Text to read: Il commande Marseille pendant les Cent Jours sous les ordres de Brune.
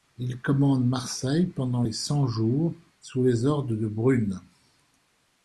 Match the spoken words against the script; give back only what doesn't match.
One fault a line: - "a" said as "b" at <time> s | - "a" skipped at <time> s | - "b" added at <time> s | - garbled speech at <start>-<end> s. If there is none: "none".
none